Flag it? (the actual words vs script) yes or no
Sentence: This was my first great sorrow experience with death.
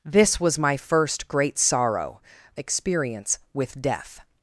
no